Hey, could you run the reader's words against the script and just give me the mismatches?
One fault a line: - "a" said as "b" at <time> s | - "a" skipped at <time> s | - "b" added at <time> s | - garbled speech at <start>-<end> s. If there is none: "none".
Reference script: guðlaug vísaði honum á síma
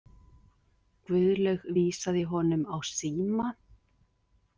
none